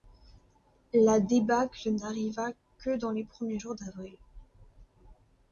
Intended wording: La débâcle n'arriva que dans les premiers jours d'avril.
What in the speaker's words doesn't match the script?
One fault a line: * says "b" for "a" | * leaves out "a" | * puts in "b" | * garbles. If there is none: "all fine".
all fine